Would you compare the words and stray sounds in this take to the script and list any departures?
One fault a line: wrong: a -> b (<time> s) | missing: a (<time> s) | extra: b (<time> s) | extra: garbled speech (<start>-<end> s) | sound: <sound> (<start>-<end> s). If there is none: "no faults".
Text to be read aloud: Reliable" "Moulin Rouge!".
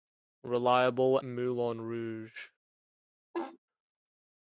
sound: laugh (3.3-3.6 s)